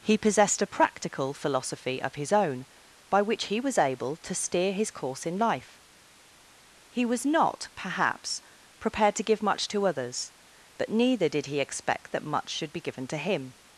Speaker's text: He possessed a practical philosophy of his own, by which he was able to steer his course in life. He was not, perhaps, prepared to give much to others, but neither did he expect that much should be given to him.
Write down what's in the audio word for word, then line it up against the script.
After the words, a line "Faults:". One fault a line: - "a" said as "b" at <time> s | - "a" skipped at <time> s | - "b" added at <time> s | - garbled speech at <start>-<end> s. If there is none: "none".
He possessed a practical philosophy of his own, by which he was able to steer his course in life. He was not, perhaps, prepared to give much to others, but neither did he expect that much should be given to him.
Faults:
none